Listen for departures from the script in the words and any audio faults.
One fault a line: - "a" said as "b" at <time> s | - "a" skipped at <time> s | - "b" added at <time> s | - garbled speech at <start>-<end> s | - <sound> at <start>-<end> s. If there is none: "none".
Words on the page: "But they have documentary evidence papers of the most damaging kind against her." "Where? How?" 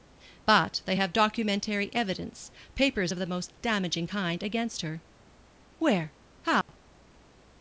- dropout at 6.6-6.7 s